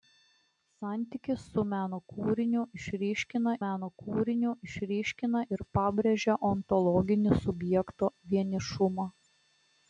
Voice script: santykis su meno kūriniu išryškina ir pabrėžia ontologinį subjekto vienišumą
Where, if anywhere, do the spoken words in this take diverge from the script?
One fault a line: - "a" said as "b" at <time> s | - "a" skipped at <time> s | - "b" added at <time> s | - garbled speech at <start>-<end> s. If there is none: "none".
- "meno kūriniu išryškina" added at 3.6 s